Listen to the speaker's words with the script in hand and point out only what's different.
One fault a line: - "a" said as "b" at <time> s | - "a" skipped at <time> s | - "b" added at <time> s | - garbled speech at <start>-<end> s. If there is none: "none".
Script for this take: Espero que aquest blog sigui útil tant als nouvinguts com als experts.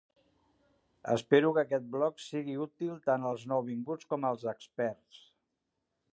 none